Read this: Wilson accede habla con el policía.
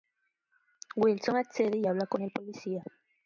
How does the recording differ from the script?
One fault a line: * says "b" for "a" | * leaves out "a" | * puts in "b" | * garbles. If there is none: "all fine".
* puts in "y"